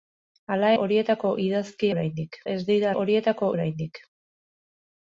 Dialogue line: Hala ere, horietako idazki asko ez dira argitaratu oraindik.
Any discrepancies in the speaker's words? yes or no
yes